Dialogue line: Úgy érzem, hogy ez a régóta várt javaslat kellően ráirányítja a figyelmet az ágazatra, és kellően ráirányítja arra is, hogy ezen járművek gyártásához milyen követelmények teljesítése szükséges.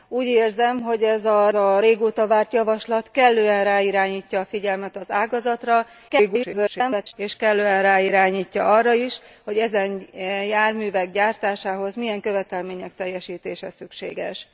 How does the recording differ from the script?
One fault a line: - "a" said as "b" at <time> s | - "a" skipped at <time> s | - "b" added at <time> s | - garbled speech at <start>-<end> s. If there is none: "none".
- "a" added at 1.5 s
- garbled speech at 6.1-7.1 s